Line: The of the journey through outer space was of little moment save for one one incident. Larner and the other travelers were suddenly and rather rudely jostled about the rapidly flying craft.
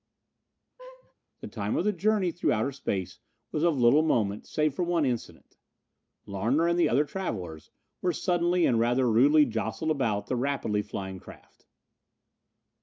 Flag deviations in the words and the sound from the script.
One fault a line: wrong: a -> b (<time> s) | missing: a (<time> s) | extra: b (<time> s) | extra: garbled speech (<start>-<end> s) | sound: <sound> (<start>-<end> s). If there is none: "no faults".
sound: laugh (0.8-1.1 s)
extra: time (1.5 s)
missing: one (5.0 s)